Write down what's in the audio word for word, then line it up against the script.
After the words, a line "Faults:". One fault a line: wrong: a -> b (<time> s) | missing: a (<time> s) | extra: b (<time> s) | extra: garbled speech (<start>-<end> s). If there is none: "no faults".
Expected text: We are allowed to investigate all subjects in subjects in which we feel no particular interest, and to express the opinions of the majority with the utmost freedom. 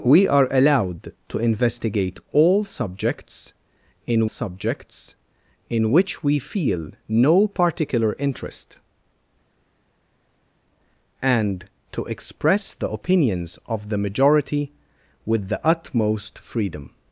We are allowed to investigate all subjects in subjects in which we feel no particular interest, and to express the opinions of the majority with the utmost freedom.
Faults:
no faults